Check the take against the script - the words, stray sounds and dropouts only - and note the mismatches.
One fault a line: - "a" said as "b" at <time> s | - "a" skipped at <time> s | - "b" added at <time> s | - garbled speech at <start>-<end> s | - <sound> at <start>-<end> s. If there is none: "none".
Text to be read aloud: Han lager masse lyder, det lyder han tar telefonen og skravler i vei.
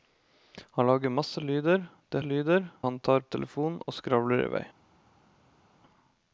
none